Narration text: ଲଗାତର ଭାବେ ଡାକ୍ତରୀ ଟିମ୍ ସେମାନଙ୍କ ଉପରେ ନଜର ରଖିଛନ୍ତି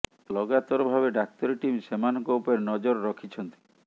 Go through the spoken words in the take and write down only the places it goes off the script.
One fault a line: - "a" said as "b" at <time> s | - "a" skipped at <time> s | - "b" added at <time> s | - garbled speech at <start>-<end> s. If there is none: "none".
none